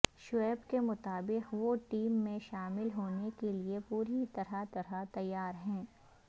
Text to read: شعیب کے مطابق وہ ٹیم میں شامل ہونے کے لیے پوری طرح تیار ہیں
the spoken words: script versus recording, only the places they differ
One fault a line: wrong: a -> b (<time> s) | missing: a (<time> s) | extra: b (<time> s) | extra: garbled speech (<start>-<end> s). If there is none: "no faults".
extra: طرح (4.7 s)